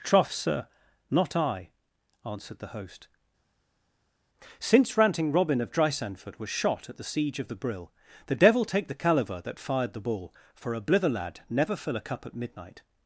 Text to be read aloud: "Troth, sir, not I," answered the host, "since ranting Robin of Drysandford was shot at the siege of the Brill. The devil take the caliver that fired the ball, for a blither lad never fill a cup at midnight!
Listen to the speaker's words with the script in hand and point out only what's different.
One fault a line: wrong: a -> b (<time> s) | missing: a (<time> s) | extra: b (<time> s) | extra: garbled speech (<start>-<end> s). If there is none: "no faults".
no faults